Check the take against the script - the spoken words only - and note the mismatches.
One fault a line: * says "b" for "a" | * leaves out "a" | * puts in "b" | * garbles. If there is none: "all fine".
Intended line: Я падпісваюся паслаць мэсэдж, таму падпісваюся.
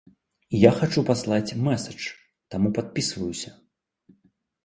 * says "хачу" for "падпісваюся"